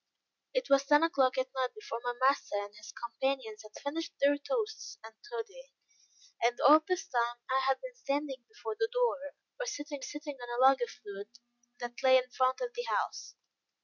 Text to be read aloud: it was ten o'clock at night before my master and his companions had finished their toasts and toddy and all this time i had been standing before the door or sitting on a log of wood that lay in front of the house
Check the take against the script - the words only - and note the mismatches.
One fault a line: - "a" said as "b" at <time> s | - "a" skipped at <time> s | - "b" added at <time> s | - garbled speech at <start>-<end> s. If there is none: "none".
- "sitting" added at 10.0 s